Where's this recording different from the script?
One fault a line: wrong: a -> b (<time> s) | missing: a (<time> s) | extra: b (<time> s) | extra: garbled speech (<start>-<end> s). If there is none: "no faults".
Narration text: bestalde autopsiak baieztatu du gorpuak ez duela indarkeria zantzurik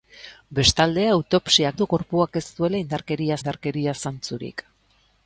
missing: baieztatu (1.8 s)
extra: indarkeria (3.4 s)